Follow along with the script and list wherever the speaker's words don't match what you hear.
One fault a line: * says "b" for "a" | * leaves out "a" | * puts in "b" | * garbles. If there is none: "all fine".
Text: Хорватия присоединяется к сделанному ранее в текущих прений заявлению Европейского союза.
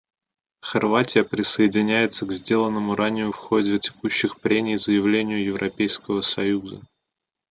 * puts in "ходе"